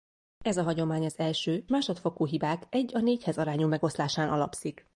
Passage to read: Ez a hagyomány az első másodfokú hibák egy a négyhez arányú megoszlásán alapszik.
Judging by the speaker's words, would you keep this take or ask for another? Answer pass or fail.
pass